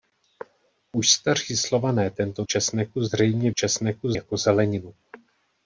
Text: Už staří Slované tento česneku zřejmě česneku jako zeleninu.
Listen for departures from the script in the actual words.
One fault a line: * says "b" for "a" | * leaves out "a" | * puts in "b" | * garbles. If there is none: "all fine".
all fine